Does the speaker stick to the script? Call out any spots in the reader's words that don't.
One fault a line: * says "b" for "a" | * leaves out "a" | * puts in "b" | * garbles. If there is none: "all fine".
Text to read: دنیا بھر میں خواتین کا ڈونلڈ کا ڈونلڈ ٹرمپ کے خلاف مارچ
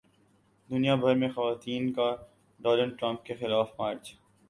* leaves out "کا ڈونلڈ"